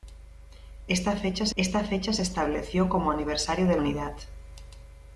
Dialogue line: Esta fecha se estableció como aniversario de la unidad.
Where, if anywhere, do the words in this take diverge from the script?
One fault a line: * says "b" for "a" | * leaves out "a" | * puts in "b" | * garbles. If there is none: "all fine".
* puts in "esta fecha se"
* leaves out "la"